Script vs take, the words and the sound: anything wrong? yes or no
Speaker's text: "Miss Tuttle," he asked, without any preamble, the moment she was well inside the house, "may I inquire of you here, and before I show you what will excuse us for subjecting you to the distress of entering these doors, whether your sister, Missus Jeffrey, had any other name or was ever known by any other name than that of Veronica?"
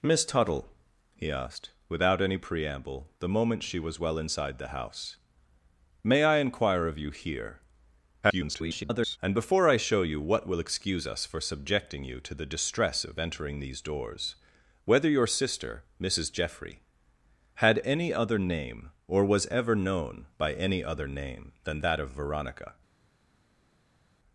yes